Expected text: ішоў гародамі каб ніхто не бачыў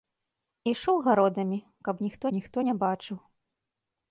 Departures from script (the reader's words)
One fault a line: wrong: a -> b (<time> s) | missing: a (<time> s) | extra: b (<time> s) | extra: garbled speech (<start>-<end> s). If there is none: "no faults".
extra: ніхто (2.4 s)